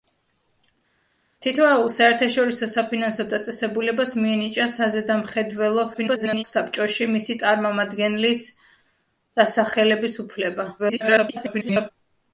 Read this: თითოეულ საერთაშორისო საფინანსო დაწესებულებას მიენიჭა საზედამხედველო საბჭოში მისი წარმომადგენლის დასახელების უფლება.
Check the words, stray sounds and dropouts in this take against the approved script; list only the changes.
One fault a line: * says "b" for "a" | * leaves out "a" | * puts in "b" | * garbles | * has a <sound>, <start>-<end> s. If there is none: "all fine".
* garbles
* garbles